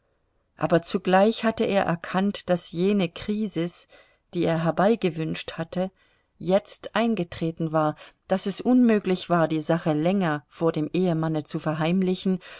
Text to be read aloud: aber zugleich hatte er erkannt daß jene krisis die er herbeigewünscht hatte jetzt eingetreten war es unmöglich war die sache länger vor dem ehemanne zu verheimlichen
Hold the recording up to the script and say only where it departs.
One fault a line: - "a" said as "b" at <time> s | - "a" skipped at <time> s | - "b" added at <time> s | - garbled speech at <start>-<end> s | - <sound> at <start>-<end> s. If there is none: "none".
- "daß" added at 8.3 s